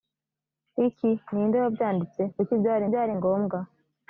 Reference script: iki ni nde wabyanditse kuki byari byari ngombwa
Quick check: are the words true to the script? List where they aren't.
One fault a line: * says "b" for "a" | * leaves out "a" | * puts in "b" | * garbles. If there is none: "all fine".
all fine